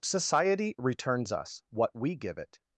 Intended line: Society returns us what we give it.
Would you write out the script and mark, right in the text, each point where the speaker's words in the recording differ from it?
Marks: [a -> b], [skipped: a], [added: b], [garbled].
Society returns us what we give it.